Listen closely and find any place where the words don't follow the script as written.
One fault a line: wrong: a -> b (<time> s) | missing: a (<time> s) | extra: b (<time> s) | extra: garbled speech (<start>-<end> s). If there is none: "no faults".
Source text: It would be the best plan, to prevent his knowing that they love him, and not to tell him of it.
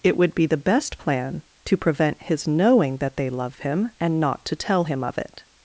no faults